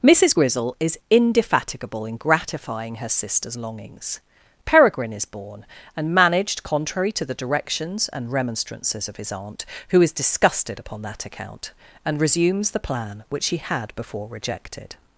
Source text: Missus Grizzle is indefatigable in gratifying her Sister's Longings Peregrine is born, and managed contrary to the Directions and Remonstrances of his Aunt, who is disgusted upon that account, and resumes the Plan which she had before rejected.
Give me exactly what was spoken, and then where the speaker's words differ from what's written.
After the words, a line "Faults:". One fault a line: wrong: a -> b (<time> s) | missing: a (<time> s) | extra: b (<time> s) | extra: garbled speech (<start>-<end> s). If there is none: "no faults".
Missus Grizzle is indefatigable in gratifying her Sister's Longings Peregrine is born, and managed contrary to the Directions and Remonstrances of his Aunt, who is disgusted upon that account, and resumes the Plan which she had before rejected.
Faults:
no faults